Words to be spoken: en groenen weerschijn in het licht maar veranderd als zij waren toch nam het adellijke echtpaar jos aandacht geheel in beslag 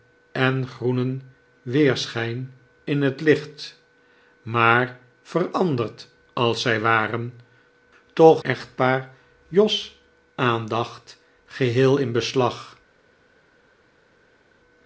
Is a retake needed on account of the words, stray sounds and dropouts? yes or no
yes